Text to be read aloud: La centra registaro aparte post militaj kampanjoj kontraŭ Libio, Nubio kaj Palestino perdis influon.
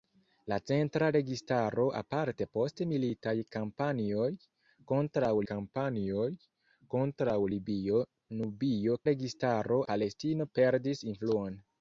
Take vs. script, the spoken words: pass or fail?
fail